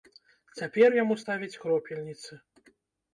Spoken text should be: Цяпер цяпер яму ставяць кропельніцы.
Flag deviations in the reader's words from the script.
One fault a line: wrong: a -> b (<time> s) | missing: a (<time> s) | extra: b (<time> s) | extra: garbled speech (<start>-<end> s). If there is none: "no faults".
missing: цяпер (0.9 s)